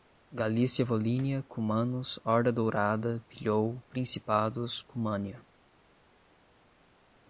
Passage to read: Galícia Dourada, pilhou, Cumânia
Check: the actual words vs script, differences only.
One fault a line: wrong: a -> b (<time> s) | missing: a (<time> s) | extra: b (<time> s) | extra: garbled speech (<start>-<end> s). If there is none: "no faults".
extra: Volínia cumanos Horda (0.8 s)
extra: principados (3.9 s)